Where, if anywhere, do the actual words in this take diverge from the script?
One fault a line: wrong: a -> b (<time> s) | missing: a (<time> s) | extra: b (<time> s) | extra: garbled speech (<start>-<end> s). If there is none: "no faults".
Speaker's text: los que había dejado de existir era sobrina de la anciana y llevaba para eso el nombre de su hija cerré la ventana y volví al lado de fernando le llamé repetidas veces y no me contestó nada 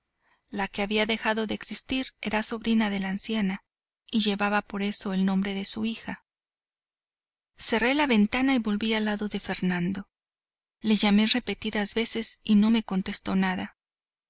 wrong: los -> la (0.5 s)
wrong: para -> por (4.6 s)